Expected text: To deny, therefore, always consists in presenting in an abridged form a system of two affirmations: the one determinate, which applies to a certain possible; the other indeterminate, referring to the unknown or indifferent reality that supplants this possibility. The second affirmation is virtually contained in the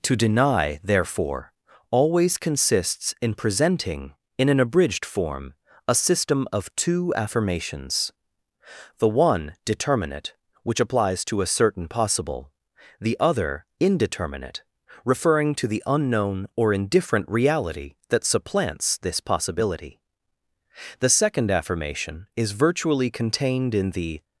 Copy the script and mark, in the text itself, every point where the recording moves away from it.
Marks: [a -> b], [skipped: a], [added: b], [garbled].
To deny, therefore, always consists in presenting in an abridged form a system of two affirmations: the one determinate, which applies to a certain possible; the other indeterminate, referring to the unknown or indifferent reality that supplants this possibility. The second affirmation is virtually contained in the